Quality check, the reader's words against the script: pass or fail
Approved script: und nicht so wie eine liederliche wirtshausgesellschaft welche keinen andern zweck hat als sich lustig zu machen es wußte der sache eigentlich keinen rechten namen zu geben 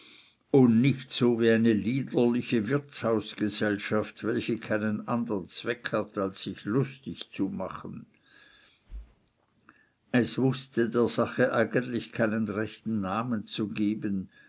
pass